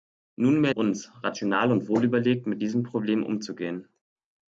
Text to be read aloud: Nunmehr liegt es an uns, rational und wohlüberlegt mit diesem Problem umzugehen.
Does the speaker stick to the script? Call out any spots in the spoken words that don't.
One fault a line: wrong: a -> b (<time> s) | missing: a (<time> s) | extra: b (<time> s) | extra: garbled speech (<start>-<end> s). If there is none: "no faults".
missing: liegt es an (0.7 s)